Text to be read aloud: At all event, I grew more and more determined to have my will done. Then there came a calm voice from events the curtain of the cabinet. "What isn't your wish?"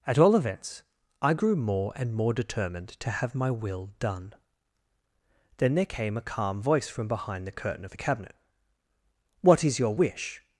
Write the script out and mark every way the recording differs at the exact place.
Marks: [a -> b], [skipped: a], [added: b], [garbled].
At all [event, -> events] I grew more and more determined to have my will done. Then there came a calm voice from [events -> behind] the curtain of the cabinet. "What [isn't -> is] your wish?"